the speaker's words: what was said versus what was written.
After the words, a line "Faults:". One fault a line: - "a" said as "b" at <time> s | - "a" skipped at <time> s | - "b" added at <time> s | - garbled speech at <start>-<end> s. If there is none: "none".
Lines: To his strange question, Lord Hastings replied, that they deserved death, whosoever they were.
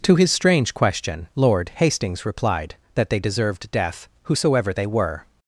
To his strange question, Lord Hastings replied, that they deserved death, whosoever they were.
Faults:
none